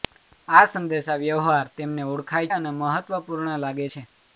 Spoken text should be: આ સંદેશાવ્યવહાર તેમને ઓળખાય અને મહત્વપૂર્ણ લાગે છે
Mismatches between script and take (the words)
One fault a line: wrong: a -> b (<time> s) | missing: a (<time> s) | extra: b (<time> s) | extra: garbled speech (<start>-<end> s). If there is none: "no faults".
no faults